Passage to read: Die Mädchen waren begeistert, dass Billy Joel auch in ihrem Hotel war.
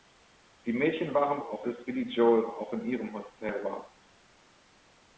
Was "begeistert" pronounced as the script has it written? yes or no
no